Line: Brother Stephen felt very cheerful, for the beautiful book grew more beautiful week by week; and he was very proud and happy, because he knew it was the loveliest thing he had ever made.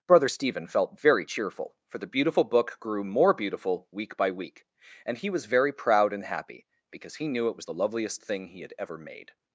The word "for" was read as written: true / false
true